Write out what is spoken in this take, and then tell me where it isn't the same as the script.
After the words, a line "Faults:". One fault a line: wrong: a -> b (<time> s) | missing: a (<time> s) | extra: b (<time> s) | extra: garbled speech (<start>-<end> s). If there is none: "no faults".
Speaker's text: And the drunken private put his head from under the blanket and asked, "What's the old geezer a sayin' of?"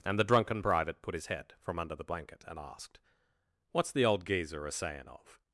And the drunken private put his head from under the blanket and asked, "What's the old geezer a sayin' of?"
Faults:
no faults